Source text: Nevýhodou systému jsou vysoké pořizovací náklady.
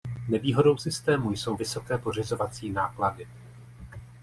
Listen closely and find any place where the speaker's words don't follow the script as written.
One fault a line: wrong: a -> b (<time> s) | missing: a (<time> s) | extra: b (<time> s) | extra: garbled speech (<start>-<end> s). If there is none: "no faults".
no faults